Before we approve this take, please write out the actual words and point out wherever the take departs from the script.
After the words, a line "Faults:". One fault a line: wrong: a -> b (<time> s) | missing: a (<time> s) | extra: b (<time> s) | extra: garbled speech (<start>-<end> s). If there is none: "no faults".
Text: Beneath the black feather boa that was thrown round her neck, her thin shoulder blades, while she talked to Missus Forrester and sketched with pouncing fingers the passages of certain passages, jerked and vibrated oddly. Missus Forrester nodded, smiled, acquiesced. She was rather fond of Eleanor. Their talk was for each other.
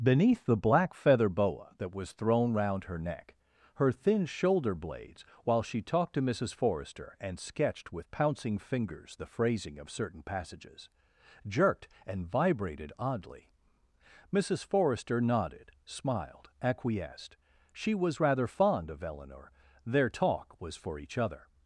Beneath the black feather boa that was thrown round her neck, her thin shoulder blades, while she talked to Missus Forrester and sketched with pouncing fingers the phrasing of certain passages, jerked and vibrated oddly. Missus Forrester nodded, smiled, acquiesced. She was rather fond of Eleanor. Their talk was for each other.
Faults:
wrong: passages -> phrasing (9.3 s)